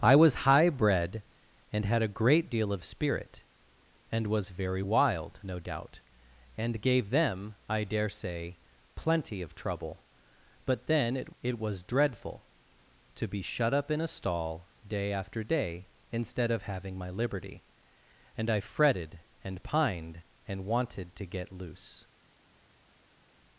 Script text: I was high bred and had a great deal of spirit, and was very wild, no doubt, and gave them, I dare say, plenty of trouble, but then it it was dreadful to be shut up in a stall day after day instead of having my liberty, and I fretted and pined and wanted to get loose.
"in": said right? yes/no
yes